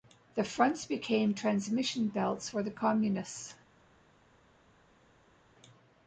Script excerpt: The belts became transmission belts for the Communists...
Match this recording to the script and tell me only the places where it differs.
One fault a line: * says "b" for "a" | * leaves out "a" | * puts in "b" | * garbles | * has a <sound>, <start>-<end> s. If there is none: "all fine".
* says "fronts" for "belts"